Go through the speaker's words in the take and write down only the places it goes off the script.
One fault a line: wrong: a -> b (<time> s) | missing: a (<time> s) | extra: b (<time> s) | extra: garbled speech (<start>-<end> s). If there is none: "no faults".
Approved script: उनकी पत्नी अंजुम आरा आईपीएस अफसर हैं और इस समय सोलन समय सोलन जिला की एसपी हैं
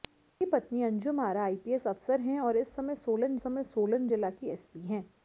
no faults